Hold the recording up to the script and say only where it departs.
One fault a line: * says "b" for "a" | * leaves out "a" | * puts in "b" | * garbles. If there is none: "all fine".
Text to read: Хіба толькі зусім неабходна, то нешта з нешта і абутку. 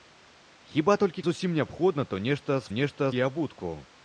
all fine